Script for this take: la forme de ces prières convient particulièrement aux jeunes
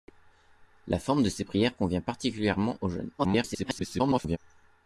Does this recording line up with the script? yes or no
no